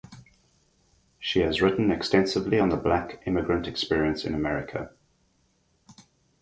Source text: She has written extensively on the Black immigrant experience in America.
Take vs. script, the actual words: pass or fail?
pass